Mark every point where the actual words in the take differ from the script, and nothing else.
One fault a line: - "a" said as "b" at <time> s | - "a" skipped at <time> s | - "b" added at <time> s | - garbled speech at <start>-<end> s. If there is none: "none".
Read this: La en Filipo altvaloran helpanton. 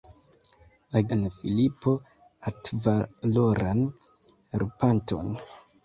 none